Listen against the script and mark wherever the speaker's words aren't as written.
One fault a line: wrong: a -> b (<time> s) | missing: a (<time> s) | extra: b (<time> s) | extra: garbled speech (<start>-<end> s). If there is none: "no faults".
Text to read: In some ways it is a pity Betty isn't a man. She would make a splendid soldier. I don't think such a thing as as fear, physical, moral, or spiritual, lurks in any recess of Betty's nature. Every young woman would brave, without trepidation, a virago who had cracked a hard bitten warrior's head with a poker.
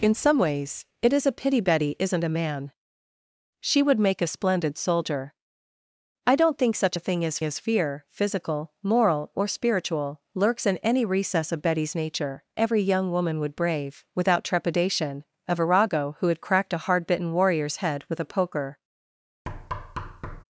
no faults